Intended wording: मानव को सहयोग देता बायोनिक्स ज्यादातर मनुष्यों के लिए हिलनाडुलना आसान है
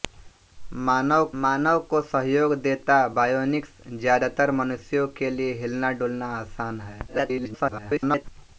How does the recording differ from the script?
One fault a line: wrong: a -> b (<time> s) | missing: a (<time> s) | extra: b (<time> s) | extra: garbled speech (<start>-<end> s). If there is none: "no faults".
extra: मानव (1.4 s)
extra: garbled speech (7.1-8.2 s)